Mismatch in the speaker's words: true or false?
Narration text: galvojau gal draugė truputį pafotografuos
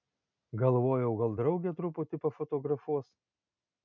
false